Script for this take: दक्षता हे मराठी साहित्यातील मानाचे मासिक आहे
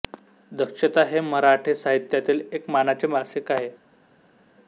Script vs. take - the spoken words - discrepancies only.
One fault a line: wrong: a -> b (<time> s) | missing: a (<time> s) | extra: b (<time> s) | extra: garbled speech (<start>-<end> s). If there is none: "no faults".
extra: एक (2.5 s)